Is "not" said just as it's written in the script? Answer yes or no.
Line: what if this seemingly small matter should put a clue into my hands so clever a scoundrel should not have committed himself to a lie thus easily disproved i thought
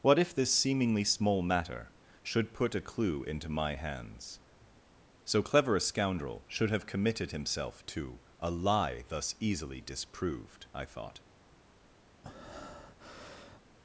no